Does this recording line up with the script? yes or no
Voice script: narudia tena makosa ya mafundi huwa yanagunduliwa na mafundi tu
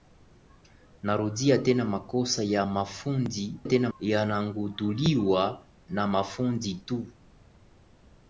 no